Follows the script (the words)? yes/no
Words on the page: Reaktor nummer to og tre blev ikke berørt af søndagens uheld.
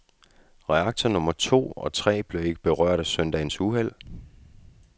yes